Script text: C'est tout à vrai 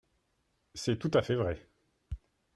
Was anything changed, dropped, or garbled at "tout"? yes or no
no